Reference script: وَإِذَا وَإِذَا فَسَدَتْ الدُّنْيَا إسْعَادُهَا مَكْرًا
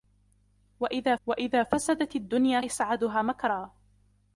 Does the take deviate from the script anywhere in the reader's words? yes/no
no